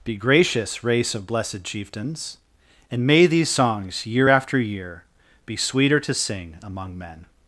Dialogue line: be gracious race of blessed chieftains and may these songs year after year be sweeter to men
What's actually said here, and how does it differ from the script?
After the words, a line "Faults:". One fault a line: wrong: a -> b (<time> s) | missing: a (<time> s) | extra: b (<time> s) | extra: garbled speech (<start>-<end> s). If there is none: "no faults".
be gracious race of blessed chieftains and may these songs year after year be sweeter to sing among men
Faults:
extra: sing among (6.1 s)